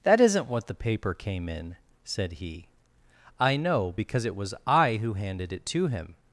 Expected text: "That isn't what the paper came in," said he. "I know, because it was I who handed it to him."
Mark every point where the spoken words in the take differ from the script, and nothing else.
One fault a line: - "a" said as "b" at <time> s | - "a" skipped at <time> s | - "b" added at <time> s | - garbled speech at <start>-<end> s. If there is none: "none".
none